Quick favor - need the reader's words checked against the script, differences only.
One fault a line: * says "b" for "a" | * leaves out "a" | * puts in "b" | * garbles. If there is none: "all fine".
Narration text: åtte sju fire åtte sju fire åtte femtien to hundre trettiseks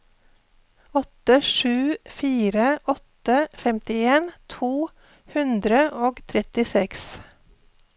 * leaves out "sju fire åtte"
* puts in "og"